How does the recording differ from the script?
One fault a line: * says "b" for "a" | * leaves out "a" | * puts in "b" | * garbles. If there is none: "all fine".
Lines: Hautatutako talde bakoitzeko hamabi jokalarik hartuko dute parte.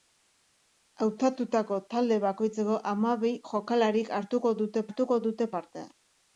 * puts in "hartuko dute"